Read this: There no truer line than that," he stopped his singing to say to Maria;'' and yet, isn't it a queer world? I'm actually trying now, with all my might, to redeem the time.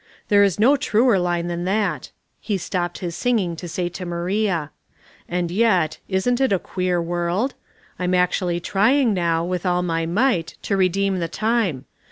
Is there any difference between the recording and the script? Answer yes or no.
yes